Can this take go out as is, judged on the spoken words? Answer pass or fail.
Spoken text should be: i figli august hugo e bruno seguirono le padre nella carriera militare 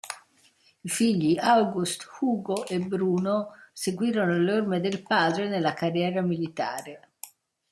fail